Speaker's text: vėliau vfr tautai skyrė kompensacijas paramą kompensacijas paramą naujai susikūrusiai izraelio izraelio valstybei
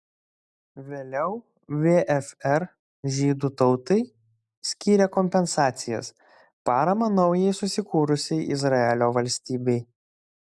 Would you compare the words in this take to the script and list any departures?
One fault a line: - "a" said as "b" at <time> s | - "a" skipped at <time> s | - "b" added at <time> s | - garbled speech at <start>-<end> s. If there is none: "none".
- "žydų" added at 3.2 s
- "kompensacijas paramą" skipped at 7.1 s
- "izraelio" skipped at 9.1 s